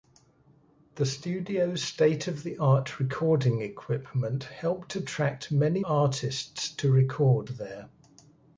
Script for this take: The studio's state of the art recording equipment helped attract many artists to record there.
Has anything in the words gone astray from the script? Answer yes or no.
no